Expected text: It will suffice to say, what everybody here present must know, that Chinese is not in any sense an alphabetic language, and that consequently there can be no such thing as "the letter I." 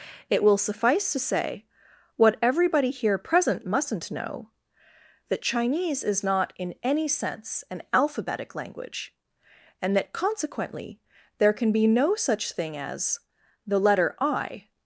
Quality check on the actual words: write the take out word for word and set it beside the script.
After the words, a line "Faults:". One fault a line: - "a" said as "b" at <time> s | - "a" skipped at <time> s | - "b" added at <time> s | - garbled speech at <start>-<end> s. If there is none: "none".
It will suffice to say, what everybody here present mustn't know, that Chinese is not in any sense an alphabetic language, and that consequently there can be no such thing as "the letter I."
Faults:
- "must" said as "mustn't" at 3.6 s